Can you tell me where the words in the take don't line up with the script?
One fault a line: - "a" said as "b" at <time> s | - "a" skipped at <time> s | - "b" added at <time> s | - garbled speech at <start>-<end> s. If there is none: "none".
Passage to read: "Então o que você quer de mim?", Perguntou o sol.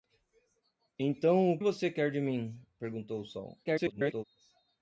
- "que" skipped at 1.6 s
- garbled speech at 3.6-4.2 s